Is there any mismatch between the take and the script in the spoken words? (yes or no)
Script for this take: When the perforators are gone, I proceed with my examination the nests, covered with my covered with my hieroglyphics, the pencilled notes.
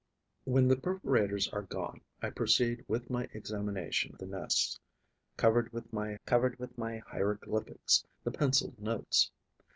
no